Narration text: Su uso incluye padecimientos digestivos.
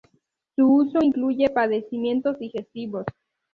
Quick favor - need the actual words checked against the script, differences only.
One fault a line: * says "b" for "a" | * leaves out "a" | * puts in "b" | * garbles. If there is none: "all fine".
all fine